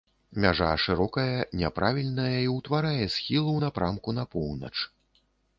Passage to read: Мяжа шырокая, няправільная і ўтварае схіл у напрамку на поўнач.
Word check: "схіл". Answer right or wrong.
right